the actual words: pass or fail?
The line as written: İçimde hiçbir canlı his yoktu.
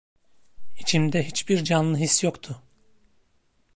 pass